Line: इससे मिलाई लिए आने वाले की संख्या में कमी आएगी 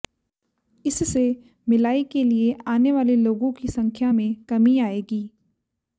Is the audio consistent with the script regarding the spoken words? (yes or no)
no